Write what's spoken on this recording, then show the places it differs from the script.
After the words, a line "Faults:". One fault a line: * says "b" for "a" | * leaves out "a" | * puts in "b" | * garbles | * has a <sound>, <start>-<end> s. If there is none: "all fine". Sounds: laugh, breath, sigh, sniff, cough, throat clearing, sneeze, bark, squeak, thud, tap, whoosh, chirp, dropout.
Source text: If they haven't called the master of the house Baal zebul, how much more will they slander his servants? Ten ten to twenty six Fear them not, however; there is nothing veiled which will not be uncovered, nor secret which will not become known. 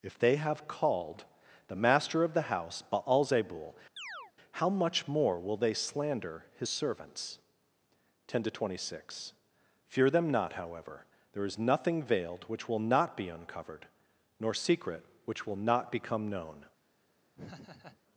If they have called the master of the house Baal zebul, how much more will they slander his servants? Ten to twenty six Fear them not, however; there is nothing veiled which will not be uncovered, nor secret which will not become known.
Faults:
* says "have" for "haven't"
* has a chirp, 4.0-4.3 s
* leaves out "ten"
* has a laugh, 17.3-18.0 s